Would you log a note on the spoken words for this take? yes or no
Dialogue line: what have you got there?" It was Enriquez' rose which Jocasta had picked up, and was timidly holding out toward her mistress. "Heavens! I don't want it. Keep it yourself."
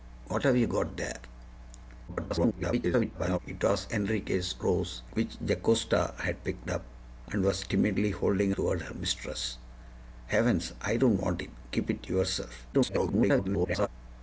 yes